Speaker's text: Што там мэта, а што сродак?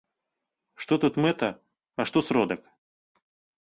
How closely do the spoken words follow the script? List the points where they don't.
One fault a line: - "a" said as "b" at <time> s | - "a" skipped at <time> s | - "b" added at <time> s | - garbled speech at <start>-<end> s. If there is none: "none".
- "там" said as "тут" at 1.1 s